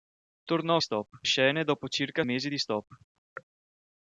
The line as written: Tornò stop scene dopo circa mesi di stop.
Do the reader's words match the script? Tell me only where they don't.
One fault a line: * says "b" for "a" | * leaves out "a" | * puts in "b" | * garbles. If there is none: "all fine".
all fine